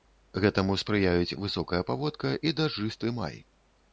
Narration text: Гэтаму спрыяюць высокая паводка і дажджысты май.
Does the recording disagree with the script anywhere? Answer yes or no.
no